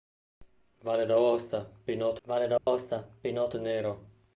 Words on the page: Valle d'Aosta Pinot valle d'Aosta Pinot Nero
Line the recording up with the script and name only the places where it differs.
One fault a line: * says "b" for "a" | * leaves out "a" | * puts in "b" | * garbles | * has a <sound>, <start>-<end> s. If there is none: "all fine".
* has a dropout, 2.6-2.7 s